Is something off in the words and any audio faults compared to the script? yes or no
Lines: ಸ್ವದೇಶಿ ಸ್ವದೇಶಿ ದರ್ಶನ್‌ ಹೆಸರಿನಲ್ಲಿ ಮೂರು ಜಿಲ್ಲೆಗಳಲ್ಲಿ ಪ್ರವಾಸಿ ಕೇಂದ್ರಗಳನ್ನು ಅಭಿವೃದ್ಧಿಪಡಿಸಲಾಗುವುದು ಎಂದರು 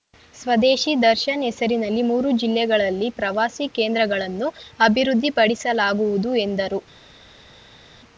yes